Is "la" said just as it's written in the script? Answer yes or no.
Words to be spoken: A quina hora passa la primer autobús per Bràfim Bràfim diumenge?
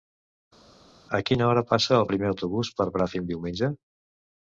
no